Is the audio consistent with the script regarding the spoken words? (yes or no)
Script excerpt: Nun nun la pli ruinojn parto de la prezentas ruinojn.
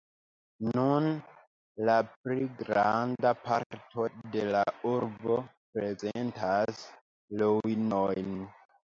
no